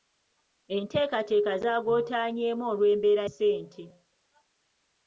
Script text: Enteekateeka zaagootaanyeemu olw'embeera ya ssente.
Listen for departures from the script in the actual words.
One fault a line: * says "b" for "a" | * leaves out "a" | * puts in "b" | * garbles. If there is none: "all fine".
* leaves out "ya"